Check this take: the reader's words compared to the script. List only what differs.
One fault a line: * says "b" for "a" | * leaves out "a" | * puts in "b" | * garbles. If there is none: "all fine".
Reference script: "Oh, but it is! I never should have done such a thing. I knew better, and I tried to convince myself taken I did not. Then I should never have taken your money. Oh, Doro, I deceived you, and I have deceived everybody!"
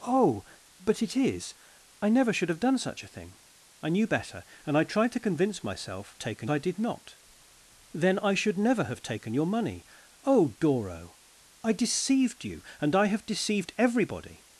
all fine